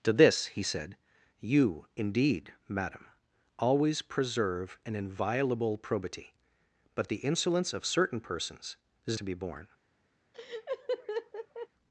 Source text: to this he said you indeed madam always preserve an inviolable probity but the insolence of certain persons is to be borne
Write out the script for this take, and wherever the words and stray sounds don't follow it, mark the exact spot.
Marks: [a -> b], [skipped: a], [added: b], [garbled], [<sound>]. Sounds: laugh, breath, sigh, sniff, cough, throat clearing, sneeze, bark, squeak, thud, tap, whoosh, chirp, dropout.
to this he said you indeed madam always preserve an inviolable probity but the insolence of certain persons is to be borne [laugh]